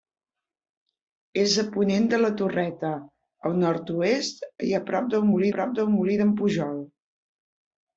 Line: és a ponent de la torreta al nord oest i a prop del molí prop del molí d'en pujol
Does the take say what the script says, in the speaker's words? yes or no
yes